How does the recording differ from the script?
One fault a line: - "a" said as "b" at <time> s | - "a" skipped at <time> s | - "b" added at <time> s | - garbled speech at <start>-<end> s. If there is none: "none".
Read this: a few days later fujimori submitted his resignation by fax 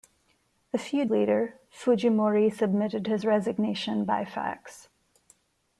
- "days" skipped at 1.1 s